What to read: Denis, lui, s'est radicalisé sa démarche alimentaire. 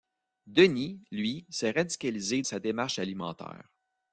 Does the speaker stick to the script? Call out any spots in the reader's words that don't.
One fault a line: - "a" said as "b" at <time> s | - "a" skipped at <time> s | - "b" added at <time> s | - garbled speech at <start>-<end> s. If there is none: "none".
none